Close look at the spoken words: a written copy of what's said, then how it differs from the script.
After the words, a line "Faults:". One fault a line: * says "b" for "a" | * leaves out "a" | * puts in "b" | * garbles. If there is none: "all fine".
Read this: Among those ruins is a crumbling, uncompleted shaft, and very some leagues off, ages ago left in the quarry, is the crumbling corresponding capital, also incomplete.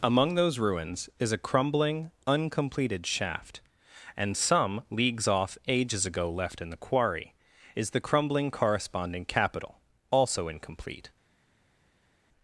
Among those ruins is a crumbling, uncompleted shaft, and some leagues off, ages ago left in the quarry, is the crumbling corresponding capital, also incomplete.
Faults:
* leaves out "very"